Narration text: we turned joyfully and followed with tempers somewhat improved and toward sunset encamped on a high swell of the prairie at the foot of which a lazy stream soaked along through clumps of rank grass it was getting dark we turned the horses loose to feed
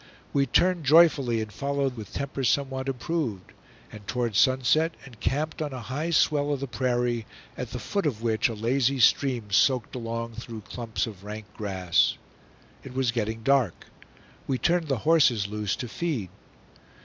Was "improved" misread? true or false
false